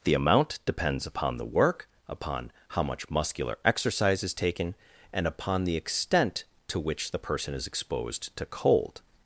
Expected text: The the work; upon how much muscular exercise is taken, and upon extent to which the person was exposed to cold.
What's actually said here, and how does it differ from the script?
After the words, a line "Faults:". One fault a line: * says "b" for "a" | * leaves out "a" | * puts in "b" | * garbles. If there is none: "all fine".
The amount depends upon the work; upon how much muscular exercise is taken, and upon the extent to which the person is exposed to cold.
Faults:
* puts in "amount depends upon"
* puts in "the"
* says "is" for "was"